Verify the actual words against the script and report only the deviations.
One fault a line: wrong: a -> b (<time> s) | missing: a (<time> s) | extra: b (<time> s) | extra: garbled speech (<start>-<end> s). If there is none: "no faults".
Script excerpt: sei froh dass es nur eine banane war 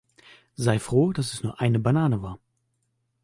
no faults